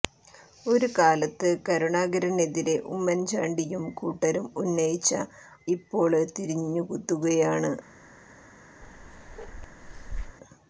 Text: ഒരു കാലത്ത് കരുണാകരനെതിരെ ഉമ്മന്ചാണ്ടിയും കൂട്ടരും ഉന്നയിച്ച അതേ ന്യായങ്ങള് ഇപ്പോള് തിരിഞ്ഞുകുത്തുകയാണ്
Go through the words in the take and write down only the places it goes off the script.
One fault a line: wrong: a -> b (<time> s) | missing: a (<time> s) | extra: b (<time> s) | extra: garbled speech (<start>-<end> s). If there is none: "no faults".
missing: അതേ ന്യായങ്ങള് (5.1 s)